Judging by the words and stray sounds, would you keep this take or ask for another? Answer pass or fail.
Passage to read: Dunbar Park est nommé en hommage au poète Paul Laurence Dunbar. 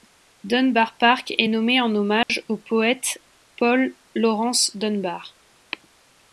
fail